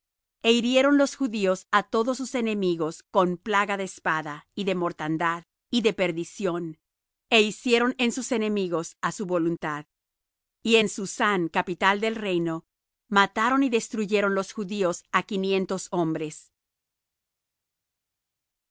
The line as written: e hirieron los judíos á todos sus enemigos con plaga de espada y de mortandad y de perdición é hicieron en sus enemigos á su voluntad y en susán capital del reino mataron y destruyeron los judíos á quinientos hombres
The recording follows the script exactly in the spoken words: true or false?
true